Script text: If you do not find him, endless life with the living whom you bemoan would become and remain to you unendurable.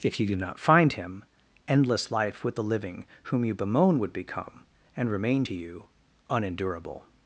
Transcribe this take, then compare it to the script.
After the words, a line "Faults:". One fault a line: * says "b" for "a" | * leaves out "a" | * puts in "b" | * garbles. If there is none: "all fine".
If you do not find him, endless life with the living whom you bemoan would become and remain to you unendurable.
Faults:
all fine